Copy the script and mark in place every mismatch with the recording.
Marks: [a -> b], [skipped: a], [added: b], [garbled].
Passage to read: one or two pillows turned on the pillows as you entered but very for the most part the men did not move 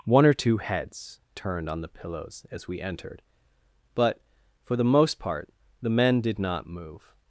one or two [pillows -> heads] turned on the pillows as [you -> we] entered but [skipped: very] for the most part the men did not move